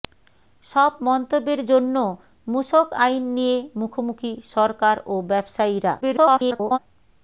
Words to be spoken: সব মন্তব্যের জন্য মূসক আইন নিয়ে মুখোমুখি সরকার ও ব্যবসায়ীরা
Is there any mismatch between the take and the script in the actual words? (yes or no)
yes